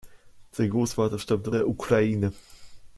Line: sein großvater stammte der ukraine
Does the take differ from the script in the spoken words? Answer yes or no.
no